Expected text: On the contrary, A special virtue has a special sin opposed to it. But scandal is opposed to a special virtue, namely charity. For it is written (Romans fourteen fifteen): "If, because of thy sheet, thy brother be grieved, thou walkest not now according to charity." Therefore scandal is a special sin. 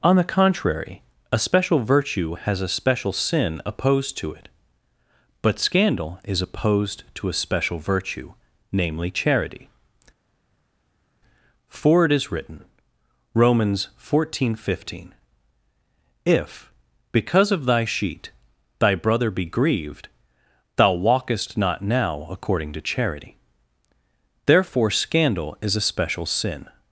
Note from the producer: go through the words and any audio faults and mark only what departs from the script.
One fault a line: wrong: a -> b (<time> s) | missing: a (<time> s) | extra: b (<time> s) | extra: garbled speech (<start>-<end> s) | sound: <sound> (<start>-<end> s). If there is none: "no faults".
no faults